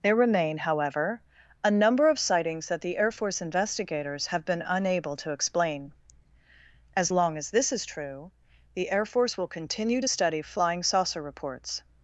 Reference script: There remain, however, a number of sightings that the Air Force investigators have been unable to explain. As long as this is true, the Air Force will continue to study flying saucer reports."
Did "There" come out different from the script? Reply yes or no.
no